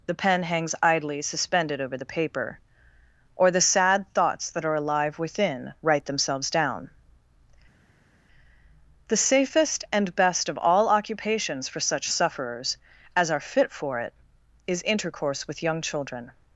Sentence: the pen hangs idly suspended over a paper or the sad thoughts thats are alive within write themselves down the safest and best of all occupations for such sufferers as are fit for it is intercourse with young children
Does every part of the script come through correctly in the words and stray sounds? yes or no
no